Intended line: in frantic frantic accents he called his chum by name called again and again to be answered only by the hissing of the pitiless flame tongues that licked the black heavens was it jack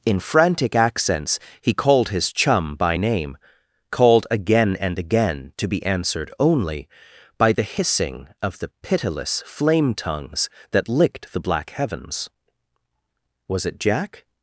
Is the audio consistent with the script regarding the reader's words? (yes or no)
no